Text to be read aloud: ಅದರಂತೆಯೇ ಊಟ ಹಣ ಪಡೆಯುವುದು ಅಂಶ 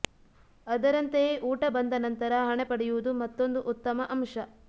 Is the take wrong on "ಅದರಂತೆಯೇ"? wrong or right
right